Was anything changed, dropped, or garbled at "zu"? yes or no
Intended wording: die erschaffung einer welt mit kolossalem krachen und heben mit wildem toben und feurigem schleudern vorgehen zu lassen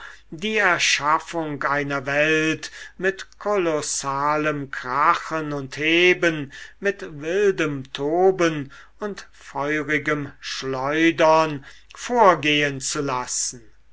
no